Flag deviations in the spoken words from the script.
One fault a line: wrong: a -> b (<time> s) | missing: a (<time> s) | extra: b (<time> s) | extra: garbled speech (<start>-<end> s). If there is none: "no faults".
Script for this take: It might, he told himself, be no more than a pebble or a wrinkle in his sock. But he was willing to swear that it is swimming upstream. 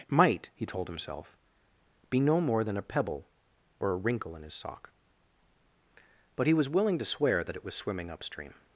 wrong: is -> was (7.6 s)